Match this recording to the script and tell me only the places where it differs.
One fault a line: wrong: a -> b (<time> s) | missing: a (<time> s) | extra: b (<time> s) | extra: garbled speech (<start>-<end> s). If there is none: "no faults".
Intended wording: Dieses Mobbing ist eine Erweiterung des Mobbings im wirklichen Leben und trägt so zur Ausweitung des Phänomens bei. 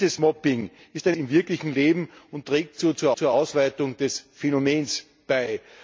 missing: Erweiterung des Mobbings (1.2 s)
extra: zur (3.1 s)